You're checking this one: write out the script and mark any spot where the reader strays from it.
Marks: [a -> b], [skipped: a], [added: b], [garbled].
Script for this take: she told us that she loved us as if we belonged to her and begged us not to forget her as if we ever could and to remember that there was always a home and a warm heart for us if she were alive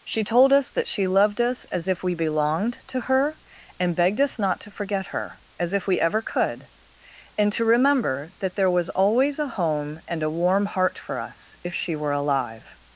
she told us that she loved us as if we belonged to her and begged us not to forget her as if we ever could and to remember that there was always a home and a warm heart for us if she were alive